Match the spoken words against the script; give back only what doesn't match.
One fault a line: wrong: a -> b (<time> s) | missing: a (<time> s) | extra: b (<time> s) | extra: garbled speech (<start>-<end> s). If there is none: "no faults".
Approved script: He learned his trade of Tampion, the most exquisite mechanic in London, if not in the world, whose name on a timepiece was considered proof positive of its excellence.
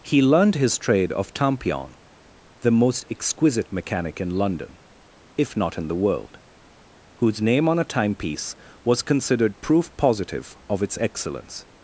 no faults